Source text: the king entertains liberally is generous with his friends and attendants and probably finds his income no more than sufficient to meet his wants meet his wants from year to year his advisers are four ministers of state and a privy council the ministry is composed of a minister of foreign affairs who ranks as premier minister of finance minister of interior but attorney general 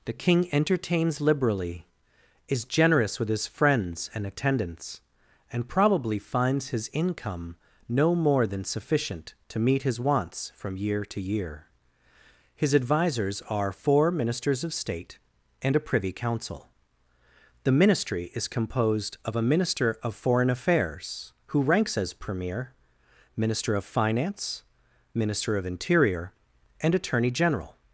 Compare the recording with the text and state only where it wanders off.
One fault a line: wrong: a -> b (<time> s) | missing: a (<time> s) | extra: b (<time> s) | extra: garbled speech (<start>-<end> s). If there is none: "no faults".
missing: meet his wants (10.5 s)
wrong: but -> and (26.8 s)